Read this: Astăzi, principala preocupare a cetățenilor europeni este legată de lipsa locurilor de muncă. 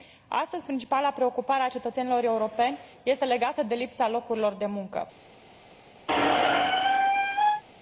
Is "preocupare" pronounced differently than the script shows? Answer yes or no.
no